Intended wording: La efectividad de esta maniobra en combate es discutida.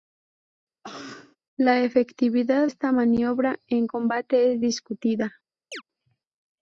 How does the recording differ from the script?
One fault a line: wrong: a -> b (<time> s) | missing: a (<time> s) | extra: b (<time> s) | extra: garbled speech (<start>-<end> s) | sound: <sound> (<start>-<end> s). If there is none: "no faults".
sound: cough (0.8-1.4 s)
missing: de (2.7 s)
sound: chirp (5.7-5.8 s)